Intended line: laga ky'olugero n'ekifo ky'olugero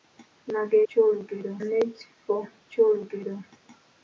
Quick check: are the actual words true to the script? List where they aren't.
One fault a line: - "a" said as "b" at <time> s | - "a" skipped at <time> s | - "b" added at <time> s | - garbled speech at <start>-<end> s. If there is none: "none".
none